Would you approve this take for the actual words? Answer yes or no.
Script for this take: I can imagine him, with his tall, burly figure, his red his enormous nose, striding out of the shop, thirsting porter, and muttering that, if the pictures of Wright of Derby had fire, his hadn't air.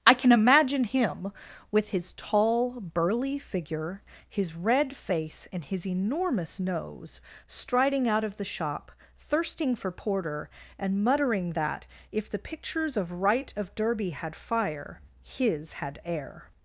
no